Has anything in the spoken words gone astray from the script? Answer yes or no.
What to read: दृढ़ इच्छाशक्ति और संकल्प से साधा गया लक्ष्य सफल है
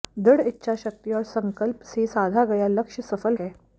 no